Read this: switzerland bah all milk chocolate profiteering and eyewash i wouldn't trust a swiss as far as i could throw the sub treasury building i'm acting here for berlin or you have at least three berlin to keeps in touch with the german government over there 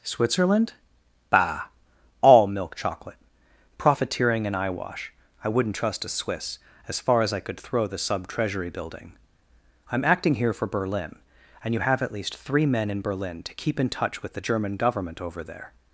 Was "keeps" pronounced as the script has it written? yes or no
no